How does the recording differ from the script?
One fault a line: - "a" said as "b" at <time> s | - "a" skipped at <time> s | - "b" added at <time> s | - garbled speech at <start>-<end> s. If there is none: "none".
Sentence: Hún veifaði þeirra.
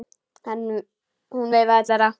none